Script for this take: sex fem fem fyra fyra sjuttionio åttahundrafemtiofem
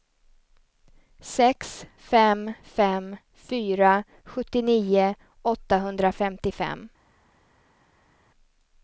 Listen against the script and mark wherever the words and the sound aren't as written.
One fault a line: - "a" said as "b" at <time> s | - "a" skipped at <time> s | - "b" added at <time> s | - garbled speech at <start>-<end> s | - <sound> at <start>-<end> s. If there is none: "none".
- "fyra" skipped at 4.0 s